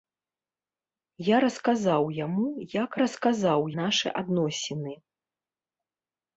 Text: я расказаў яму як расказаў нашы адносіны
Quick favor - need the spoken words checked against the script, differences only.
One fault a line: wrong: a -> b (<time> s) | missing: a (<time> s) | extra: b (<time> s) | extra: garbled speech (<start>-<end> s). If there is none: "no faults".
no faults